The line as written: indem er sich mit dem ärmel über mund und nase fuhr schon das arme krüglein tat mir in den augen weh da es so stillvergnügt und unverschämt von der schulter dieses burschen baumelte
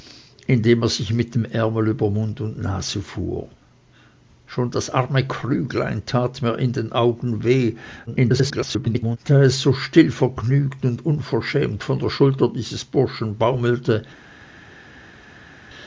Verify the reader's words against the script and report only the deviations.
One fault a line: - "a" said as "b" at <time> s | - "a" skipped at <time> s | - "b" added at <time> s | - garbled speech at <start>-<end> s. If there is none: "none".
- garbled speech at 8.1-9.2 s